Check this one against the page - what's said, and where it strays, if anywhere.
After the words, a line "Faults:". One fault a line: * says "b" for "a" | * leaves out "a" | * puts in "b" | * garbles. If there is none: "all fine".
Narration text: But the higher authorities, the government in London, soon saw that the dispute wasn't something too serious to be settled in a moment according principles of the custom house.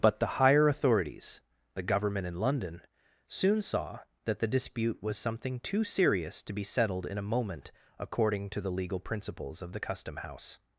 But the higher authorities, the government in London, soon saw that the dispute was something too serious to be settled in a moment according to the legal principles of the custom house.
Faults:
* says "was" for "wasn't"
* puts in "to the legal"